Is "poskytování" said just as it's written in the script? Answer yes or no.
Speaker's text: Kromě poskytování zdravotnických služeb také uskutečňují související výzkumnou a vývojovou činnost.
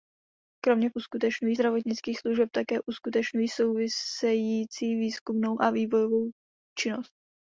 no